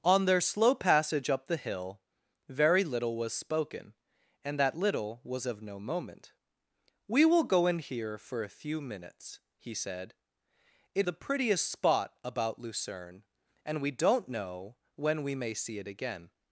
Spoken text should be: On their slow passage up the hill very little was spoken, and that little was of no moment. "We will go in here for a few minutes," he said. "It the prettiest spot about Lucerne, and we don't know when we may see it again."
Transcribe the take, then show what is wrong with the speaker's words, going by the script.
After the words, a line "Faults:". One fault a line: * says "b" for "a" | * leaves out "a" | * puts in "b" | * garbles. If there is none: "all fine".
On their slow passage up the hill very little was spoken, and that little was of no moment. "We will go in here for a few minutes," he said. "It the prettiest spot about Lucerne, and we don't know when we may see it again."
Faults:
all fine